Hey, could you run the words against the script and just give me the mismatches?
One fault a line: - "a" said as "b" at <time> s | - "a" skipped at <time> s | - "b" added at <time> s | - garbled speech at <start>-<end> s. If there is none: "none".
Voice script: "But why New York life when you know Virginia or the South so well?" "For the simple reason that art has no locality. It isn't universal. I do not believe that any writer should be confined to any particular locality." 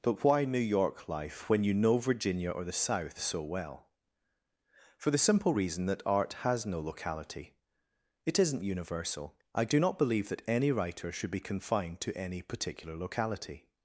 none